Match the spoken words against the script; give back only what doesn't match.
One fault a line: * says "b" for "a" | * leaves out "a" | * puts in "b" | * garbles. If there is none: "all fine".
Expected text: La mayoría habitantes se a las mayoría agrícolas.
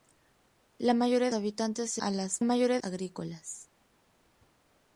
all fine